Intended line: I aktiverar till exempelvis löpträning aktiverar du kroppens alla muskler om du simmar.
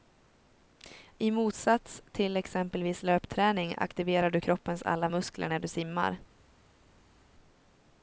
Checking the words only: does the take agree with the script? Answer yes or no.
no